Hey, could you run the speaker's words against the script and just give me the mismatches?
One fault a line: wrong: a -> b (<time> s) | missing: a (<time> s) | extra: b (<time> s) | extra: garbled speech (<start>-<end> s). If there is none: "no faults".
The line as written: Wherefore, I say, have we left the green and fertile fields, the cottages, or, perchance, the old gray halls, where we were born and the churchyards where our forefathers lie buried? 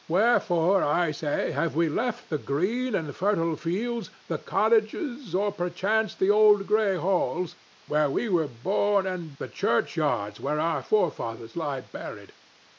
no faults